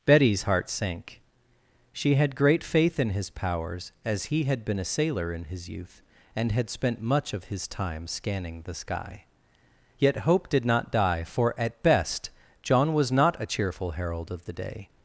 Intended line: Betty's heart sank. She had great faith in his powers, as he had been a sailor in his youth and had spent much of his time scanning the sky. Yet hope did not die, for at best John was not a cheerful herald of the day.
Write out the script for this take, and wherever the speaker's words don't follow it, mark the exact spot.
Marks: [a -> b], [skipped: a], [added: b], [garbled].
Betty's heart sank. She had great faith in his powers, as he had been a sailor in his youth and had spent much of his time scanning the sky. Yet hope did not die, for at best John was not a cheerful herald of the day.